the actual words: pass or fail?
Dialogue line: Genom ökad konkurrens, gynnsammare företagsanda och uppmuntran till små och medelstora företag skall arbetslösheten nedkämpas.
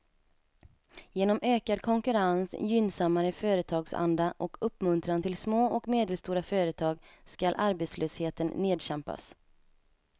pass